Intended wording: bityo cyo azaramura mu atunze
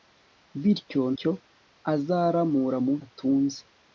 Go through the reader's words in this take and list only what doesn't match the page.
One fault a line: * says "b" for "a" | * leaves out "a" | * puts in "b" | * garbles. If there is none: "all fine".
all fine